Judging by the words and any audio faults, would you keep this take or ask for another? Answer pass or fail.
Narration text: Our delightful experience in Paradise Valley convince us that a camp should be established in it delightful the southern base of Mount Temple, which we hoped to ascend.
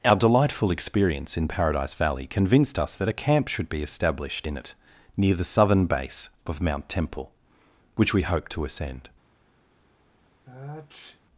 fail